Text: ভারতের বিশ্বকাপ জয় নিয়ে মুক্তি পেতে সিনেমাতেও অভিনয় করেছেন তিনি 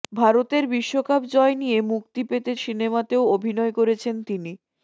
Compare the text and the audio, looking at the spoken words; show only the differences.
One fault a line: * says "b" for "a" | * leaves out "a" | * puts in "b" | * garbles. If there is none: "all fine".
all fine